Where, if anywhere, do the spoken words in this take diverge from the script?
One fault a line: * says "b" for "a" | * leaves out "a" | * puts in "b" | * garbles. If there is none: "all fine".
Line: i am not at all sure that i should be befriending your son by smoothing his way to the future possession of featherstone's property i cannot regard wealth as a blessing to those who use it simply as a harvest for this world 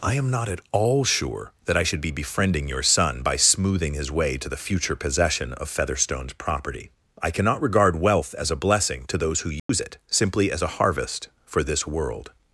all fine